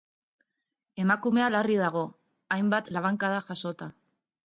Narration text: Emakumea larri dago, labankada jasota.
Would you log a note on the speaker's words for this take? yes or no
yes